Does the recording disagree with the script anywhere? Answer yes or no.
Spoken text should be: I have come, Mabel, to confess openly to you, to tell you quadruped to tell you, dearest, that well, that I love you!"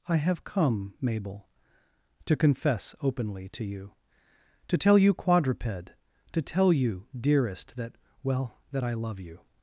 no